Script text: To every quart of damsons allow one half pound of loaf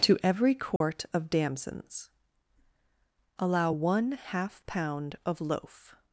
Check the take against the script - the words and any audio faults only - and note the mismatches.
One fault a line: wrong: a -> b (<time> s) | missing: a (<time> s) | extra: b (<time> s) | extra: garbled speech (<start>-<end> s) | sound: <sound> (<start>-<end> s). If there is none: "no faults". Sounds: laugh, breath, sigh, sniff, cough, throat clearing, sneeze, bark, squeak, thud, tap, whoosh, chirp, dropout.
sound: dropout (0.8-0.8 s)